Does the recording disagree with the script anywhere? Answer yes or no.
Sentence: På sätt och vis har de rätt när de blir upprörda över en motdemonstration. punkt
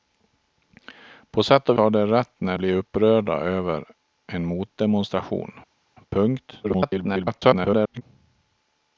yes